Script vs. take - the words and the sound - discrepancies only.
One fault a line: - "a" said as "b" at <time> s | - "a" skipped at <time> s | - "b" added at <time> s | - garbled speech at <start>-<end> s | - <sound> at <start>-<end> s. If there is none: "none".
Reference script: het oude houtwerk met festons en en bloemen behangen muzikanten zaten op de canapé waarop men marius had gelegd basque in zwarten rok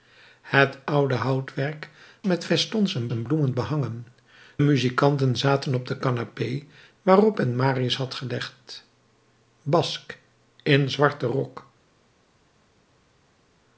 none